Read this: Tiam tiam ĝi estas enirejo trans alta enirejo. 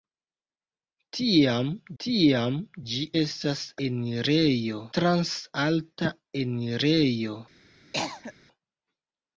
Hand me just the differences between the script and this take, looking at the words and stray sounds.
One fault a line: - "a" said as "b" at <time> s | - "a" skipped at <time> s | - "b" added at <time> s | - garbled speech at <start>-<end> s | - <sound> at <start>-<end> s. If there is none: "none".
- cough at 7.9-8.3 s